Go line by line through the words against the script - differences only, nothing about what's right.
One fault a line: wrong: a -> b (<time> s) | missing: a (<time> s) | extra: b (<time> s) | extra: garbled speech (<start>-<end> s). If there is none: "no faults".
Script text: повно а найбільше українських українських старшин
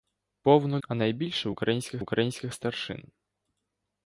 no faults